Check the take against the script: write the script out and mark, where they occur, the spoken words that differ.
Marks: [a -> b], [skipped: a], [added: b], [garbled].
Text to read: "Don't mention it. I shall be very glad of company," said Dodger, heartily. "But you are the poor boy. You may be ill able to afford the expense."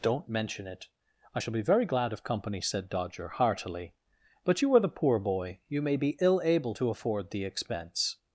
"Don't mention it. I shall be very glad of company," said Dodger, heartily. "But you are the poor boy. You may be ill able to afford the expense."